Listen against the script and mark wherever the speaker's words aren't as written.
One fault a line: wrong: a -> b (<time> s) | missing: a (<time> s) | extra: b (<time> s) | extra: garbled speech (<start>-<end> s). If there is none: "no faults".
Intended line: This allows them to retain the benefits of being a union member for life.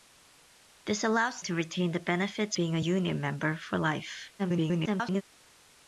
missing: them (1.4 s)
missing: of (2.6 s)
extra: garbled speech (4.4-5.2 s)